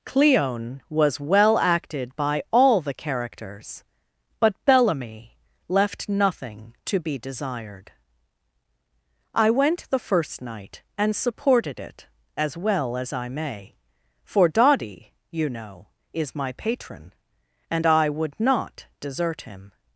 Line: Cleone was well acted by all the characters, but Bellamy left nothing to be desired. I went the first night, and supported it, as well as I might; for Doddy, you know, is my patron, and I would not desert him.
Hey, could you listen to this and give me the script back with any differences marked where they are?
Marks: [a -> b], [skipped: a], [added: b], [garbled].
Cleone was well acted by all the characters, but Bellamy left nothing to be desired. I went the first night, and supported it, as well as I [might; -> may] for Doddy, you know, is my patron, and I would not desert him.